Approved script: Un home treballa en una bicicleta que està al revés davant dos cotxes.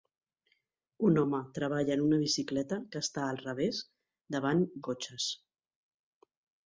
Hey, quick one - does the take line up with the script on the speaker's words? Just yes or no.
no